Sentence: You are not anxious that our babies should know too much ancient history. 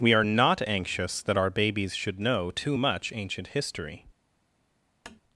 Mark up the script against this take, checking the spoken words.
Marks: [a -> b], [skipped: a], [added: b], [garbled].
[You -> We] are not anxious that our babies should know too much ancient history.